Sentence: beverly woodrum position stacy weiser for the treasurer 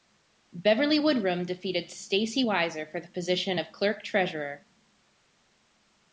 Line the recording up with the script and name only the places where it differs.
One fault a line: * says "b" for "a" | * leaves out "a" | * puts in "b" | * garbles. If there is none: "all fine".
* says "defeated" for "position"
* puts in "position of clerk"